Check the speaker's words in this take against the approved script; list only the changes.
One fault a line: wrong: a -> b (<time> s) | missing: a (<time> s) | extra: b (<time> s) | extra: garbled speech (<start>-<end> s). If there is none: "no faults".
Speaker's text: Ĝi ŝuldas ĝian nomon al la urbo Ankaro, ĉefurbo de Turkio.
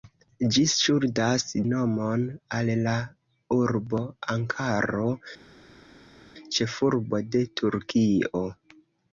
missing: ĝian (1.5 s)